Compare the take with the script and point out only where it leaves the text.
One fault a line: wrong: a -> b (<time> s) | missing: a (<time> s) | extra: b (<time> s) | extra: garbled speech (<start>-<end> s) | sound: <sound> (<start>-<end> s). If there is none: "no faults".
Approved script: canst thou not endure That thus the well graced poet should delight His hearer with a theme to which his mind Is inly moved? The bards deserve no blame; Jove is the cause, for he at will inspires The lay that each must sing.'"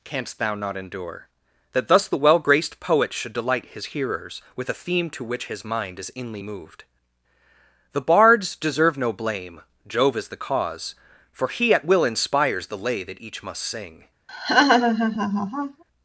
wrong: hearer -> hearers (3.9 s)
sound: laugh (14.3-15.8 s)